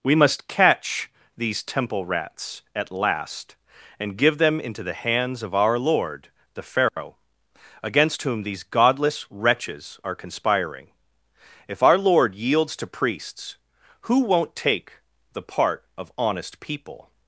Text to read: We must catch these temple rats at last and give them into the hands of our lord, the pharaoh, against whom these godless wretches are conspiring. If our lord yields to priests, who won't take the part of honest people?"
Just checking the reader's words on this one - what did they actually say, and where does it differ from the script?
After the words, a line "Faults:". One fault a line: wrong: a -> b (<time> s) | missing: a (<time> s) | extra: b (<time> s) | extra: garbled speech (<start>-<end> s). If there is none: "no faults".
We must catch these temple rats at last and give them into the hands of our lord, the pharaoh, against whom these godless wretches are conspiring. If our lord yields to priests, who won't take the part of honest people?"
Faults:
no faults